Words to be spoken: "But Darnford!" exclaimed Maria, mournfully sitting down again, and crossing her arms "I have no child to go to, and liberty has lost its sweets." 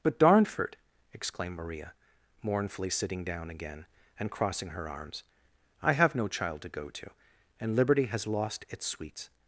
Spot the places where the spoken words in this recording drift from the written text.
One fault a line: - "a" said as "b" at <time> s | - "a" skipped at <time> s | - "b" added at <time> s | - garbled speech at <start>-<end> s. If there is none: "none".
none